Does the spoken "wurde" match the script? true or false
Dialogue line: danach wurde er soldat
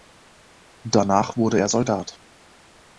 true